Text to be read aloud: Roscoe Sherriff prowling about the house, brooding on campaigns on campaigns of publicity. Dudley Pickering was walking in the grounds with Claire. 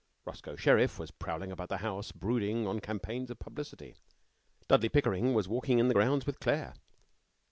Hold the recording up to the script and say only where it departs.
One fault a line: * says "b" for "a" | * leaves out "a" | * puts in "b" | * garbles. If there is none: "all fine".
* puts in "was"
* leaves out "on campaigns"